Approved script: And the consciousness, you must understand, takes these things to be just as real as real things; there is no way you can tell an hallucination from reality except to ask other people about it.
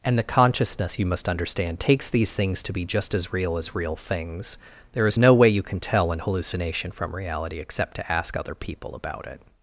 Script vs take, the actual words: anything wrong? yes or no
no